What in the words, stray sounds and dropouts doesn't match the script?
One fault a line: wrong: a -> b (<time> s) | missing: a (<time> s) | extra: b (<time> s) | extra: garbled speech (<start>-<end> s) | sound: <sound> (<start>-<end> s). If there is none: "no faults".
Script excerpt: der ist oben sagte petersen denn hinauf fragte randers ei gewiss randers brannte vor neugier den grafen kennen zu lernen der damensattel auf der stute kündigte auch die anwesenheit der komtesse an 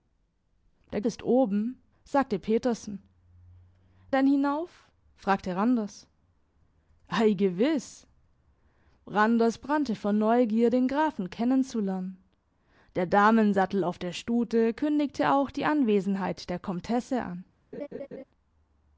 sound: laugh (17.7-18.2 s)